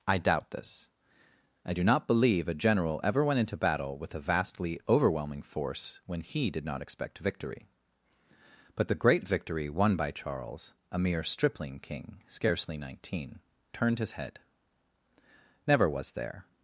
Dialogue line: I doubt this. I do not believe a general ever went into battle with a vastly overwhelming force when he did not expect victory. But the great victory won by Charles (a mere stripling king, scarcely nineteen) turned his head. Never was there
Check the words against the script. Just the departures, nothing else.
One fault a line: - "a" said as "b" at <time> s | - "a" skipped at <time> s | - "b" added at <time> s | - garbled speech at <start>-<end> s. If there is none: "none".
none